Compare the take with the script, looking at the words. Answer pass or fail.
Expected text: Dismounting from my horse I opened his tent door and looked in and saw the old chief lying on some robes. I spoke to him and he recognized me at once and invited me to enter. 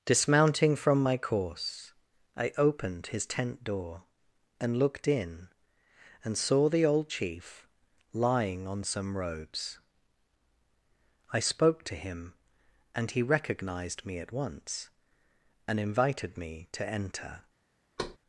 fail